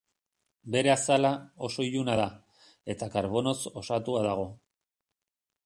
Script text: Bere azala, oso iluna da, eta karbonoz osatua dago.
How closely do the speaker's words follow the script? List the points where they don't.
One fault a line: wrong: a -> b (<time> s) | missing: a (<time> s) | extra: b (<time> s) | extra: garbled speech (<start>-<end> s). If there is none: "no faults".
no faults